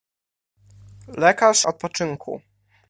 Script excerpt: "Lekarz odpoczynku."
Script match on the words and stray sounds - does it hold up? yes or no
yes